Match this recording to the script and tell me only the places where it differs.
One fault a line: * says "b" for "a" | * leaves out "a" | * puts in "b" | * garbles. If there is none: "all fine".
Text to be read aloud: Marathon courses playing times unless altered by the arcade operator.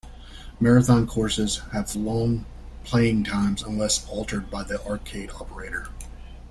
* puts in "have long"